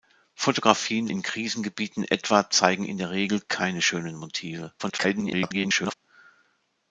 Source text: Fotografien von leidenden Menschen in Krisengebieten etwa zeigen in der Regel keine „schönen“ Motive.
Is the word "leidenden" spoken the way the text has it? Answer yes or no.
no